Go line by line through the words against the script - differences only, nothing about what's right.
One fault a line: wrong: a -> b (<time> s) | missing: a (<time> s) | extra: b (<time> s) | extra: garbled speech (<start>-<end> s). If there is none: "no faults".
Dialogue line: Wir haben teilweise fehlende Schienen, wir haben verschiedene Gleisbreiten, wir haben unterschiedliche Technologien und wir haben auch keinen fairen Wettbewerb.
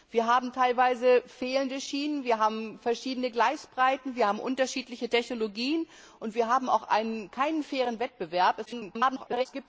extra: garbled speech (8.7-9.5 s)